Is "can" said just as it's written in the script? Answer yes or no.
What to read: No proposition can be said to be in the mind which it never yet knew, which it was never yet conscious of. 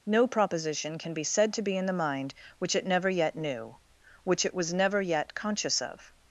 yes